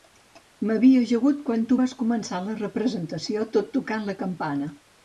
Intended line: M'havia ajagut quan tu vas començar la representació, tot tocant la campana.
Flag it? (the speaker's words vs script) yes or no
no